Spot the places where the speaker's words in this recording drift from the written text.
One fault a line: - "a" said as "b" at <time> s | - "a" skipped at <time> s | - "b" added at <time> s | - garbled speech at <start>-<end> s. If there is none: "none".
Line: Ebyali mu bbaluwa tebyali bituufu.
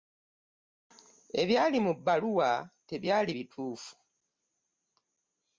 none